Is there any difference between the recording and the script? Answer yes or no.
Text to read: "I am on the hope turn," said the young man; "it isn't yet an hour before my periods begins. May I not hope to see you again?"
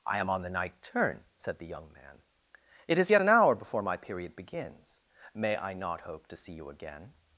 yes